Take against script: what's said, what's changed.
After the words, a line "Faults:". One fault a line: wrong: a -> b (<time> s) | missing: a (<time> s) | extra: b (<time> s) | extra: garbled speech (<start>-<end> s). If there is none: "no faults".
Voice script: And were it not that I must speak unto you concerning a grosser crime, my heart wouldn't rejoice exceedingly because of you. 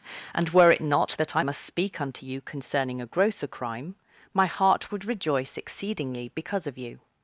And were it not that I must speak unto you concerning a grosser crime, my heart would rejoice exceedingly because of you.
Faults:
wrong: wouldn't -> would (4.9 s)